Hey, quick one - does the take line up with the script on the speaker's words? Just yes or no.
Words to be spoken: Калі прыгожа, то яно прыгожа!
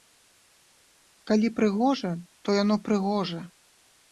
yes